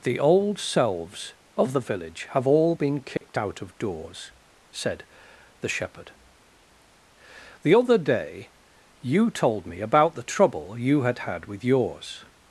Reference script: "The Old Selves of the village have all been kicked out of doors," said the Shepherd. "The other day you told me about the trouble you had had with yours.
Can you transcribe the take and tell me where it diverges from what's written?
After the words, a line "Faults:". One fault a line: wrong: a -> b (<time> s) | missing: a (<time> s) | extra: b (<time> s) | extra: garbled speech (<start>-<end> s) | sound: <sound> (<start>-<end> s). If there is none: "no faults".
"The Old Selves of the village have all been kicked out of doors," said the Shepherd. "The other day you told me about the trouble you had had with yours.
Faults:
sound: dropout (3.2-3.2 s)